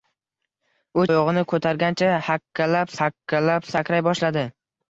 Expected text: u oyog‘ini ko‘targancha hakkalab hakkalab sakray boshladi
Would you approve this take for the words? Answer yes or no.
yes